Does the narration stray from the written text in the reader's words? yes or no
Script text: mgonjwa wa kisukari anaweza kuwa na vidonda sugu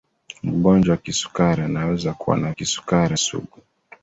yes